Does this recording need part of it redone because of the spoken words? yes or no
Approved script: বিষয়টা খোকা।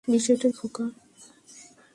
no